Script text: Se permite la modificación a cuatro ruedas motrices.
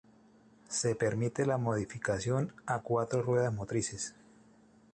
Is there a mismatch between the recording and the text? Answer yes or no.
no